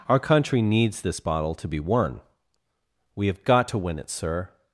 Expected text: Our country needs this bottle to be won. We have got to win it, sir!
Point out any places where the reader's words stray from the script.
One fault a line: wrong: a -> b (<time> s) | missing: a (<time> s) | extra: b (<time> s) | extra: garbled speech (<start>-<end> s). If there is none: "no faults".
no faults